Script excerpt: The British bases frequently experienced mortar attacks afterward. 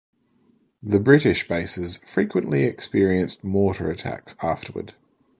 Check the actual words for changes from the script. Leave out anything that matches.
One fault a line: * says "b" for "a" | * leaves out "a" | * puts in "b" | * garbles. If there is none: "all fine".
all fine